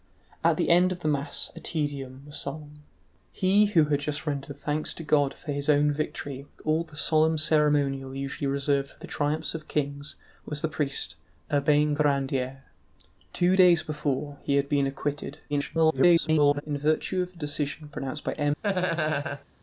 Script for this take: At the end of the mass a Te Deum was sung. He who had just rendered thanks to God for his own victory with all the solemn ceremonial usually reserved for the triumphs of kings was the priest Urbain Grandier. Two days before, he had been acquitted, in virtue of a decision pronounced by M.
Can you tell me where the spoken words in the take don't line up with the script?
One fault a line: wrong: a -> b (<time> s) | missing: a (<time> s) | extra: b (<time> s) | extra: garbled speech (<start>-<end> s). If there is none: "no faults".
extra: garbled speech (15.5-16.6 s)